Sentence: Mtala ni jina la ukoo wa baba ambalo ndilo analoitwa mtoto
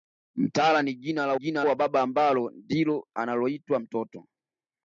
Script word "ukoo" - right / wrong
wrong